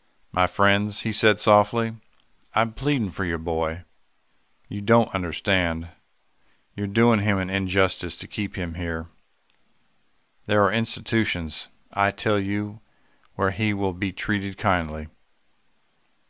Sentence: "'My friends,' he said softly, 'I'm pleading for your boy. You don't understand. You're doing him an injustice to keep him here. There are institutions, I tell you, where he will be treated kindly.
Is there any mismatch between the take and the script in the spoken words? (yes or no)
no